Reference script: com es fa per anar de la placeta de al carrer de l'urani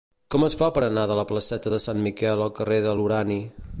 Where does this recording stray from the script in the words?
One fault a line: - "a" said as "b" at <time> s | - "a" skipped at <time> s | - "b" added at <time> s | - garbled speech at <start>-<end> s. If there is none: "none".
- "sant miquel" added at 1.9 s